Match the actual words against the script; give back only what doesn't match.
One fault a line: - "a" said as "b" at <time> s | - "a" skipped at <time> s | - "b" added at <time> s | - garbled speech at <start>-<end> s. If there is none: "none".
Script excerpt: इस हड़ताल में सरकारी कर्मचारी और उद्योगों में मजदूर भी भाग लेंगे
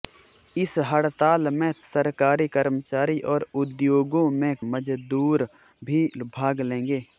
none